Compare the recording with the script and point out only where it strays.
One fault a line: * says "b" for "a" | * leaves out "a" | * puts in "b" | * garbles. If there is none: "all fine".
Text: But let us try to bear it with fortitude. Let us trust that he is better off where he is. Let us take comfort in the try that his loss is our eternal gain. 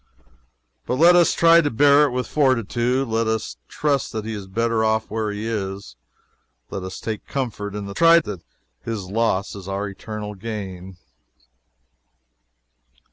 all fine